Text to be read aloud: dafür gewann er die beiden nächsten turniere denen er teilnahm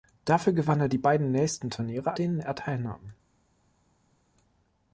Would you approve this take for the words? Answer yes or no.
yes